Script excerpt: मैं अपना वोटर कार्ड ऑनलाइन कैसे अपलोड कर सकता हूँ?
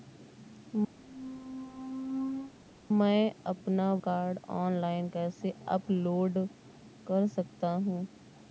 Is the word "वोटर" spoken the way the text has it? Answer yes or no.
no